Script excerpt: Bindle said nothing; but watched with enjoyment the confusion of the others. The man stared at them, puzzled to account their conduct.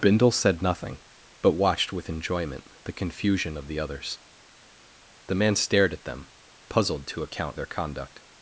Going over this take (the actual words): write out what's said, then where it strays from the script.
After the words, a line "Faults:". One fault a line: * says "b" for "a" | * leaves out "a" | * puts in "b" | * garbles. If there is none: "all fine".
Bindle said nothing; but watched with enjoyment the confusion of the others. The man stared at them, puzzled to account their conduct.
Faults:
all fine